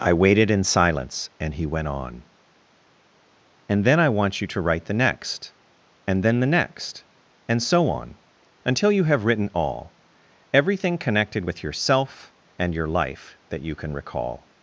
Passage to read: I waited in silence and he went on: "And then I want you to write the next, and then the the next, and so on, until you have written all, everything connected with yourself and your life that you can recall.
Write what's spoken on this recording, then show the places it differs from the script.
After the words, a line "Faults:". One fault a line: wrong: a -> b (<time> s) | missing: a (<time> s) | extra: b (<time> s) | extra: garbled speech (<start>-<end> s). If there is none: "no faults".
I waited in silence and he went on: "And then I want you to write the next, and then the next, and so on, until you have written all, everything connected with yourself and your life that you can recall.
Faults:
missing: the (6.5 s)